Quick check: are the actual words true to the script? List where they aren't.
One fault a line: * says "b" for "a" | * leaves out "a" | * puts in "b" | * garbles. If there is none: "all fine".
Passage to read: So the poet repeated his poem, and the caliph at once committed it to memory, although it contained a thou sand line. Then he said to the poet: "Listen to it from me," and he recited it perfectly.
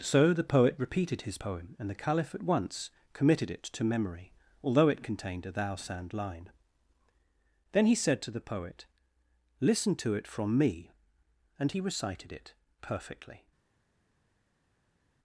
all fine